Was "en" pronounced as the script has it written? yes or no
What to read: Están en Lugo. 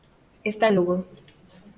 yes